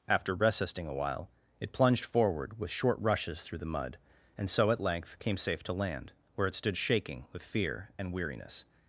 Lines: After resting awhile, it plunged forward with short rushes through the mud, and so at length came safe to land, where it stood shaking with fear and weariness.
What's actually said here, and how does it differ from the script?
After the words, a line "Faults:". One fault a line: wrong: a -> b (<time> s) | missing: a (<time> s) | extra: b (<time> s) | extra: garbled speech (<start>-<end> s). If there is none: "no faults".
After resisting a while, it plunged forward with short rushes through the mud, and so at length came safe to land, where it stood shaking with fear and weariness.
Faults:
wrong: resting awhile -> resisting a while (0.3 s)